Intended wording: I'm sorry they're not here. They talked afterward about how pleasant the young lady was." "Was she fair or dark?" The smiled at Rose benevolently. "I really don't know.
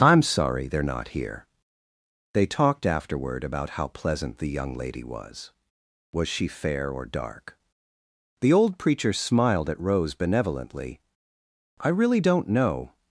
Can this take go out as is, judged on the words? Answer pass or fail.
fail